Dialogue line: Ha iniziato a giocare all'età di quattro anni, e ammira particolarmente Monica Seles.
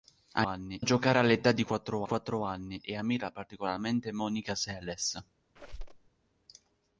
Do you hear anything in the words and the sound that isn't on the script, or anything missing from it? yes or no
yes